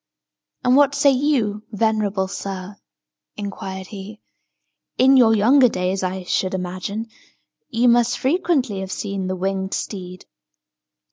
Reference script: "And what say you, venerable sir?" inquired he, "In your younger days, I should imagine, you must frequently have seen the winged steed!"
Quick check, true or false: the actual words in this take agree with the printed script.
true